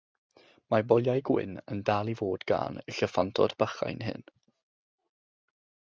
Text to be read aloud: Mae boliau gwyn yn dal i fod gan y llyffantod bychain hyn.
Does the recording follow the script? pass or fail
pass